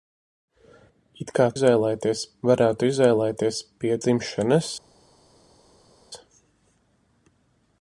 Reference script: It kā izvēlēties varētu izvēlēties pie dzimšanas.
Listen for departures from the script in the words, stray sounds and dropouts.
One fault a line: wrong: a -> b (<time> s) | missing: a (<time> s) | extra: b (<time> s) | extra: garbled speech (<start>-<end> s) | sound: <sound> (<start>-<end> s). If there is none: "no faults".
no faults